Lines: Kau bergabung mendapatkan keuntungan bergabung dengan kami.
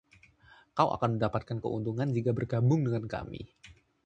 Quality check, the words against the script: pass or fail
fail